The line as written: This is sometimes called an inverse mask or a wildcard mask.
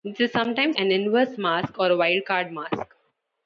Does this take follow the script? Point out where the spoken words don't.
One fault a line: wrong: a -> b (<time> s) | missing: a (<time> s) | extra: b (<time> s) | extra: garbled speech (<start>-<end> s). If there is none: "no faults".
missing: called (0.8 s)